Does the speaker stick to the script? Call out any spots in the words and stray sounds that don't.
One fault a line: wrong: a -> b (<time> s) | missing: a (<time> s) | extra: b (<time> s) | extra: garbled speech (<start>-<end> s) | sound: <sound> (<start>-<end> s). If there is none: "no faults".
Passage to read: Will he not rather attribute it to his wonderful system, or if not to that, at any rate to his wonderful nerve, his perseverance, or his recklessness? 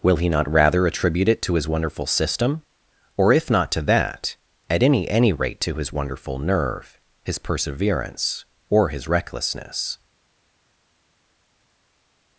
extra: any (5.1 s)